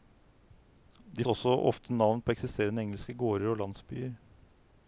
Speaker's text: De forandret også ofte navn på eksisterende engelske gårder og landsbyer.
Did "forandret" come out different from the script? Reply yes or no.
yes